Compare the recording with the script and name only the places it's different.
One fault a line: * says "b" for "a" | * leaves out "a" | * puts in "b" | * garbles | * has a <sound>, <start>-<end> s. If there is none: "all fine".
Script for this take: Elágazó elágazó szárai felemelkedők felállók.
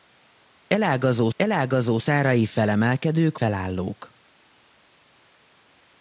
all fine